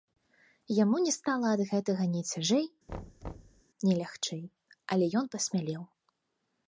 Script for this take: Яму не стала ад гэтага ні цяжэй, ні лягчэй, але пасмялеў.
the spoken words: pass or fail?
fail